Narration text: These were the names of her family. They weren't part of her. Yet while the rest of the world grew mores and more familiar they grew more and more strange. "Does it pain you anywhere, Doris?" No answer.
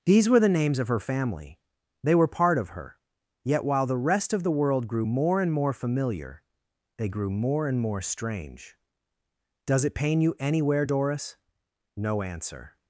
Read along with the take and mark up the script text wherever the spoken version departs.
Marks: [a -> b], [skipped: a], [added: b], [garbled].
These were the names of her family. They [weren't -> were] part of her. Yet while the rest of the world grew [mores -> more] and more familiar they grew more and more strange. "Does it pain you anywhere, Doris?" No answer.